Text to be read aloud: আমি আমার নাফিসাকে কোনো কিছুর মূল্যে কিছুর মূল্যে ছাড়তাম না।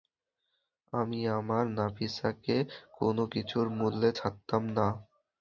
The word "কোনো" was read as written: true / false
true